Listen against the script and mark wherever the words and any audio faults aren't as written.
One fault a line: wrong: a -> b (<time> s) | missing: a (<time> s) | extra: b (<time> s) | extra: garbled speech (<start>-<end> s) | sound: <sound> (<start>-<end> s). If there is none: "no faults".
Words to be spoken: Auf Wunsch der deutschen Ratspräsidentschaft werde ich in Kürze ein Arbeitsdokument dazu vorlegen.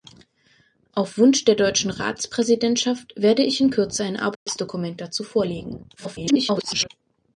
sound: dropout (4.3-4.5 s)
extra: garbled speech (6.0-6.9 s)